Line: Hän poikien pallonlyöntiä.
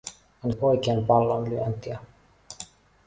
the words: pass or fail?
pass